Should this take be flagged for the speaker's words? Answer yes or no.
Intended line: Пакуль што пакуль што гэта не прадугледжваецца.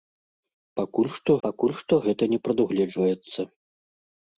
no